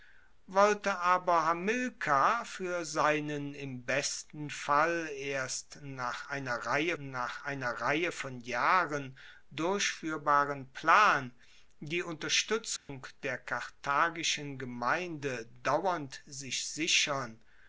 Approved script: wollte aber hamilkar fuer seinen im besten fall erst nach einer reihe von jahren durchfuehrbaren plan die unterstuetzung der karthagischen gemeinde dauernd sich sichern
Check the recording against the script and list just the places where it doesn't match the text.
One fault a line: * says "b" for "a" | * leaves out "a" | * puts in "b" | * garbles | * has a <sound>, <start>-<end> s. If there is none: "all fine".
* puts in "nach einer reihe"
* has a dropout, 12.8-12.9 s